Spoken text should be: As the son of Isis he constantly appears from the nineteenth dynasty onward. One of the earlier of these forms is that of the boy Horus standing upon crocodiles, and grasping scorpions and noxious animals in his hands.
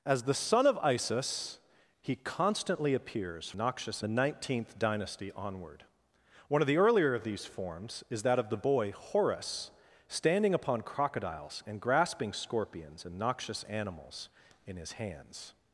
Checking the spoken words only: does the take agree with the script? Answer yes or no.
no